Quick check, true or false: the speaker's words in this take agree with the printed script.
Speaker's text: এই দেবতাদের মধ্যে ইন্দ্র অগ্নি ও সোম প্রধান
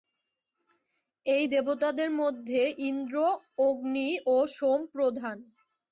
true